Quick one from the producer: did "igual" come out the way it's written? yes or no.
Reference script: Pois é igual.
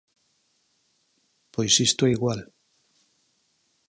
yes